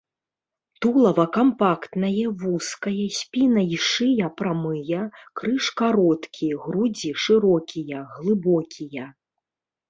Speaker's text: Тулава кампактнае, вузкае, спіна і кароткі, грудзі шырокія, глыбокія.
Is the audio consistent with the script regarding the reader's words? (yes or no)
no